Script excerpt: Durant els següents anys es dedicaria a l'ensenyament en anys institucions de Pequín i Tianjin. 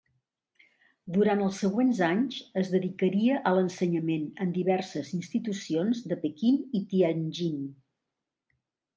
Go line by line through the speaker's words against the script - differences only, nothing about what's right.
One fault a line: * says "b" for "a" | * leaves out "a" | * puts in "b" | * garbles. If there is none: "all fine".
* says "diverses" for "anys"